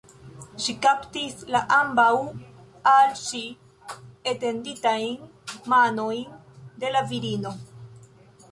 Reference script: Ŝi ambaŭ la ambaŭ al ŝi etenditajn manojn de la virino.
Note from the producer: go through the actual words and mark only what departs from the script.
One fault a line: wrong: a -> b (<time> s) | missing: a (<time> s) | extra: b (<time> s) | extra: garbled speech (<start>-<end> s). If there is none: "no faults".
wrong: ambaŭ -> kaptis (0.8 s)